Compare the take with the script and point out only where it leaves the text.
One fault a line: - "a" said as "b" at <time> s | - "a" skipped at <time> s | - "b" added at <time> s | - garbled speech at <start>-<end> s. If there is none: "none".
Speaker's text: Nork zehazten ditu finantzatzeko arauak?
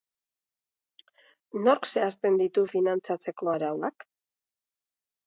none